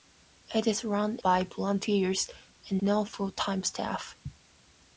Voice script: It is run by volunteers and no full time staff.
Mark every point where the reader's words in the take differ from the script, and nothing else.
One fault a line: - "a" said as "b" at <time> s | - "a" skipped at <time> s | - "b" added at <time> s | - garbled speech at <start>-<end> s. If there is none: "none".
none